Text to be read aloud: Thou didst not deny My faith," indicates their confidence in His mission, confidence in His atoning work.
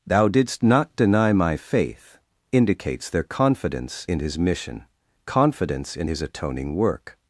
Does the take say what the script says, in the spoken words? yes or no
yes